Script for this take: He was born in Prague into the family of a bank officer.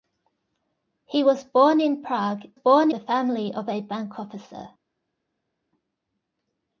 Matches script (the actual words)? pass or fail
fail